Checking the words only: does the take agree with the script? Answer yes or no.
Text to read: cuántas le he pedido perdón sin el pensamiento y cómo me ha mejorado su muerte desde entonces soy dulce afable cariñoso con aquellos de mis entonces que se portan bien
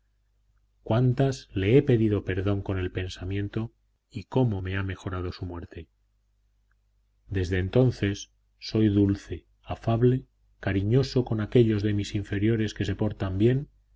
no